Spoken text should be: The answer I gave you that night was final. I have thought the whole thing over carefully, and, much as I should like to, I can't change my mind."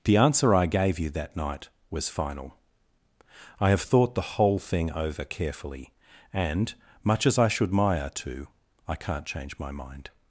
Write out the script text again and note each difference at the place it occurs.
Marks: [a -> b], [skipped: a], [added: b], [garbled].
The answer I gave you that night was final. I have thought the whole thing over carefully, and, much as I should [like -> maya] to, I can't change my mind."